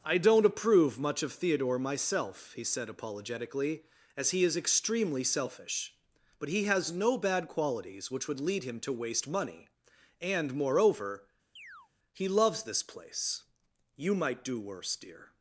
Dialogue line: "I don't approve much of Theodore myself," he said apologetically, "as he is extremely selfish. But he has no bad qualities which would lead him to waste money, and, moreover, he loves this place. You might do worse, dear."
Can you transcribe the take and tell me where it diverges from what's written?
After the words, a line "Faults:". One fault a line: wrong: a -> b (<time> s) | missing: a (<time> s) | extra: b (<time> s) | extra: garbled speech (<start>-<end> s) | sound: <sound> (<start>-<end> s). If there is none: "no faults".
"I don't approve much of Theodore myself," he said apologetically, "as he is extremely selfish. But he has no bad qualities which would lead him to waste money, and, moreover, he loves this place. You might do worse, dear."
Faults:
sound: chirp (11.6-11.9 s)